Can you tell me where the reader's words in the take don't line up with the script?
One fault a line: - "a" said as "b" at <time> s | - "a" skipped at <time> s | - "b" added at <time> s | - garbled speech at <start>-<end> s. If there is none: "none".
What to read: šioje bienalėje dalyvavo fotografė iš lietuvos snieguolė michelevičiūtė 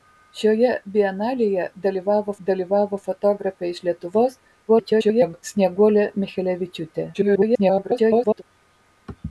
- "dalyvavo" added at 2.5 s
- garbled speech at 4.7-5.4 s
- garbled speech at 7.1-8.4 s